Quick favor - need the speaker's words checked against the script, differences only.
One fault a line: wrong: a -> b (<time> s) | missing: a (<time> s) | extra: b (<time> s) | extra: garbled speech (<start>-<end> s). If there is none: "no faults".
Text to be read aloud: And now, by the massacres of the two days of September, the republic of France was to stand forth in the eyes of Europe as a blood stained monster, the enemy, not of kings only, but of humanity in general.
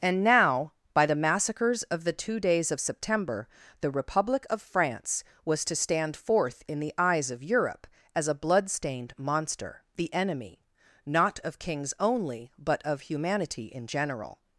no faults